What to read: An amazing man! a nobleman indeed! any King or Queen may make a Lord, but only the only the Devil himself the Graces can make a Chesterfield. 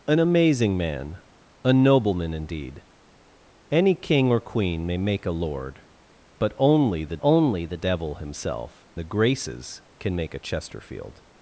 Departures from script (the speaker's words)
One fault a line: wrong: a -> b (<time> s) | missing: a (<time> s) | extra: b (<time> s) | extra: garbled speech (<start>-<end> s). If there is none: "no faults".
no faults